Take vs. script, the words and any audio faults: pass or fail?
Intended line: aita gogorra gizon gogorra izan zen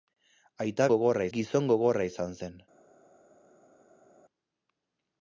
pass